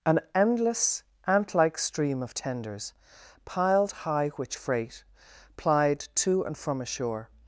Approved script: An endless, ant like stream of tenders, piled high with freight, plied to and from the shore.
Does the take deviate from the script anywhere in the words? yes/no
yes